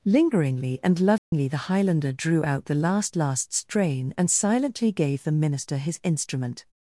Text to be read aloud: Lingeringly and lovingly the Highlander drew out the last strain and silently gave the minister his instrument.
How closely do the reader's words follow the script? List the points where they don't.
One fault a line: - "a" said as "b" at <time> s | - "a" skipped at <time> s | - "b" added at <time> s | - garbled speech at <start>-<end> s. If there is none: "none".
- "last" added at 3.1 s